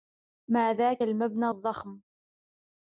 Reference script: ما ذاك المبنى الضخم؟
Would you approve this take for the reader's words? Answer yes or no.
yes